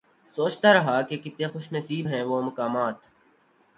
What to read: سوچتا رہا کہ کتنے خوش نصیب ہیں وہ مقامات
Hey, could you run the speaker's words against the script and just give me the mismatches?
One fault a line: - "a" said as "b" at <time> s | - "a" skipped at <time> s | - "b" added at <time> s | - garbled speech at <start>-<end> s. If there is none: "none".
none